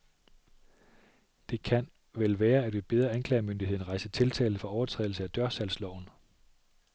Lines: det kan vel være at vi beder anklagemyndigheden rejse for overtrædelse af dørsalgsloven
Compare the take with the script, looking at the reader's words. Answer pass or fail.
fail